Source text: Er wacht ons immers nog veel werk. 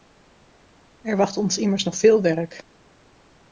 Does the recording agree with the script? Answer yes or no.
yes